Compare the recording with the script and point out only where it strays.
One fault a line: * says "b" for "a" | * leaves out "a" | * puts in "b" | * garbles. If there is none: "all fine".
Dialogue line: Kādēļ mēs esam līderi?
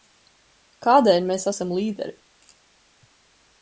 all fine